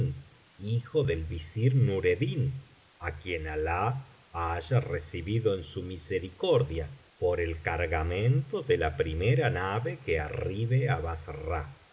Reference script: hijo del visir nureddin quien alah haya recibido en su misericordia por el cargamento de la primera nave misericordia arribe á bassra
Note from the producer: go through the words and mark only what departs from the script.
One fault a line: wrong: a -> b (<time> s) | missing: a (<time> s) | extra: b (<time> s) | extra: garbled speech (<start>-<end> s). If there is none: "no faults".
extra: á (3.0 s)
wrong: misericordia -> que (10.1 s)